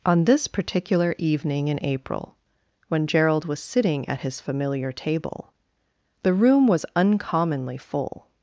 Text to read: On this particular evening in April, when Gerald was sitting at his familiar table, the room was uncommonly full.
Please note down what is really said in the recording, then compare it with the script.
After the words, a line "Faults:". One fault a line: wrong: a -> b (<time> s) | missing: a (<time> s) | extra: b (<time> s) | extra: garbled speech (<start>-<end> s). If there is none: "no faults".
On this particular evening in April, when Gerald was sitting at his familiar table, the room was uncommonly full.
Faults:
no faults